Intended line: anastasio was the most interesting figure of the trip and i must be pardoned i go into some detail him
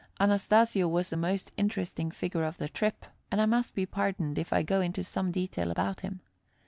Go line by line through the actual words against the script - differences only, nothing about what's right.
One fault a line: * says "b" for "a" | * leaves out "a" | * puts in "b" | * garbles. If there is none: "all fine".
* puts in "if"
* puts in "about"